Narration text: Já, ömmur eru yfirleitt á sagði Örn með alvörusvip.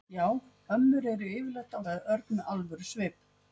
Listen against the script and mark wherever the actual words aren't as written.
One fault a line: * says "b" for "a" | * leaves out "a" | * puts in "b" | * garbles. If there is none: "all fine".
all fine